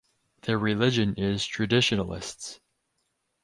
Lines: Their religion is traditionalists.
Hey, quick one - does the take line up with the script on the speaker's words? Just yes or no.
yes